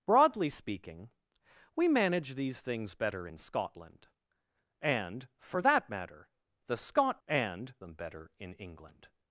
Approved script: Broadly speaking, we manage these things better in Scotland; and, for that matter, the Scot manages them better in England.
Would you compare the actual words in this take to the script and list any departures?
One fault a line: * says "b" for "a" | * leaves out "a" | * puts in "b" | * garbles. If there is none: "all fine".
* says "and" for "manages"